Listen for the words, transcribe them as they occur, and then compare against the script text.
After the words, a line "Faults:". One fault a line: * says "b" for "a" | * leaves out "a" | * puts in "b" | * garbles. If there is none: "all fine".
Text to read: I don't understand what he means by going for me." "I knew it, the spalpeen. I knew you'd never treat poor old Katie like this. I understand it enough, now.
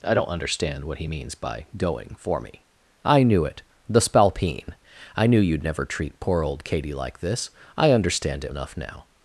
I don't understand what he means by going for me." "I knew it, the spalpeen. I knew you'd never treat poor old Katie like this. I understand it enough, now.
Faults:
all fine